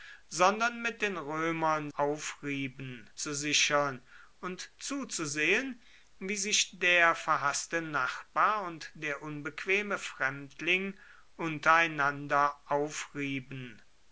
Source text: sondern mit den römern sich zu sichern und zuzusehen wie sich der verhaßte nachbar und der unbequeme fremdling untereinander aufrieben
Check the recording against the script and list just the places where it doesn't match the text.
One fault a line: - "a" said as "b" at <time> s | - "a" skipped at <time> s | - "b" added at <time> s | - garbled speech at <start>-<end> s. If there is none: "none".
- "sich" said as "aufrieben" at 2.0 s